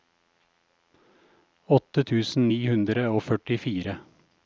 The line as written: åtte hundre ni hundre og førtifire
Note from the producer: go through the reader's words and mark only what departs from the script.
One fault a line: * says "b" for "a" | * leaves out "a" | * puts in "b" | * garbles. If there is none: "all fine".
* says "tusen" for "hundre"